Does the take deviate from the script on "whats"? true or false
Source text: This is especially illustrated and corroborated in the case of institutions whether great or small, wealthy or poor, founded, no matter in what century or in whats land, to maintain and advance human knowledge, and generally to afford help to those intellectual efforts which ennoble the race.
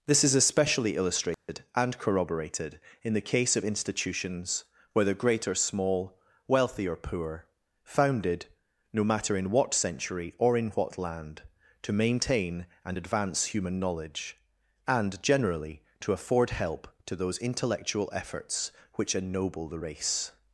true